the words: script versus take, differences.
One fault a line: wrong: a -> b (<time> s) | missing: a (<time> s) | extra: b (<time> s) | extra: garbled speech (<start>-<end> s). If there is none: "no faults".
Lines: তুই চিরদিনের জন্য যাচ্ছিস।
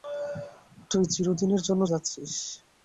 no faults